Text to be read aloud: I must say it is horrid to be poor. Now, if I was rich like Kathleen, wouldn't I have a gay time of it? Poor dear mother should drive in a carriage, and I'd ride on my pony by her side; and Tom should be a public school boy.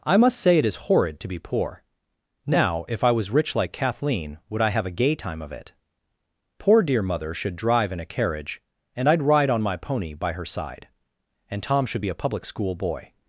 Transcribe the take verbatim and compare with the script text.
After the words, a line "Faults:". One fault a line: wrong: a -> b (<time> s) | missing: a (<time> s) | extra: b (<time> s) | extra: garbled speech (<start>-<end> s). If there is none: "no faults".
I must say it is horrid to be poor. Now, if I was rich like Kathleen, would I have a gay time of it? Poor dear mother should drive in a carriage, and I'd ride on my pony by her side; and Tom should be a public school boy.
Faults:
wrong: wouldn't -> would (4.5 s)